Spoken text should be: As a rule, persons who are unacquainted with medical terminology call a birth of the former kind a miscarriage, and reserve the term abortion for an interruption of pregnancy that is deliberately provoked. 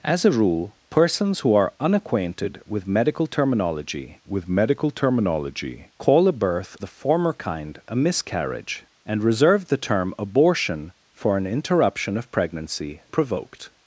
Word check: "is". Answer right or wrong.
wrong